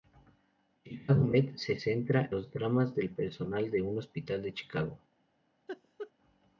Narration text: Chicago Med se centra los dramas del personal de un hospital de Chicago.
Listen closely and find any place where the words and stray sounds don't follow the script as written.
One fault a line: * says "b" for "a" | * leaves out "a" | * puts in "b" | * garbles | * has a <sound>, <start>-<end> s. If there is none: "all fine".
* has a laugh, 5.7-6.1 s